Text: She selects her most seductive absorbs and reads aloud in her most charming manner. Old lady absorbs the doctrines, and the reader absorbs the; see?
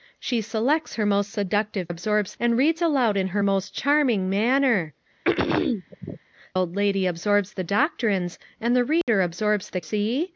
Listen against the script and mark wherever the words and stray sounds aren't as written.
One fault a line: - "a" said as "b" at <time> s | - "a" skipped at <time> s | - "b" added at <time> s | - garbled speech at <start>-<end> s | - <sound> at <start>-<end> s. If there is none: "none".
- throat clearing at 5.2-6.2 s
- dropout at 9.0-9.1 s